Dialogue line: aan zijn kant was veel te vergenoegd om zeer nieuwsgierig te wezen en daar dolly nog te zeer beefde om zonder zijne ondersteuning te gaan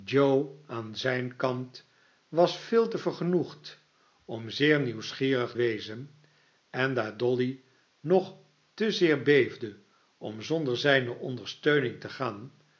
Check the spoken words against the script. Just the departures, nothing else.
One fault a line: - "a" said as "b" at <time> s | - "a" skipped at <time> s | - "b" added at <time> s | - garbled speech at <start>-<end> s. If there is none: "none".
- "te" skipped at 5.5 s